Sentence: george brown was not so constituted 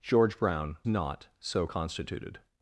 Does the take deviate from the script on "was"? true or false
true